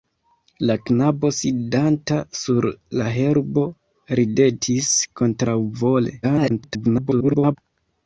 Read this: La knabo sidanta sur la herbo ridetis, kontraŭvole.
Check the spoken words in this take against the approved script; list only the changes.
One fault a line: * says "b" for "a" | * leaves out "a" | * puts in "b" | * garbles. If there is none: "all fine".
* garbles